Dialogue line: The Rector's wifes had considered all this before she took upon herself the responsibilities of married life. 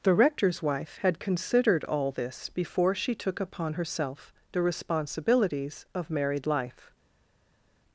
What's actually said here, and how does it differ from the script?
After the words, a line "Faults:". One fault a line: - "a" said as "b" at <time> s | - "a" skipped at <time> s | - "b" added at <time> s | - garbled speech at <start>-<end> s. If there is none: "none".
The Rector's wife had considered all this before she took upon herself the responsibilities of married life.
Faults:
- "wifes" said as "wife" at 0.6 s